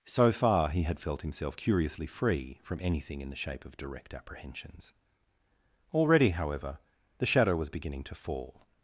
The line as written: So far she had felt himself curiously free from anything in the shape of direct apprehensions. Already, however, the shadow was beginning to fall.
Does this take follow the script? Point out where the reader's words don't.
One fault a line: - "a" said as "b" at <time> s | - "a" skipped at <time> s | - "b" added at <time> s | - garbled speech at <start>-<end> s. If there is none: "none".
- "she" said as "he" at 0.7 s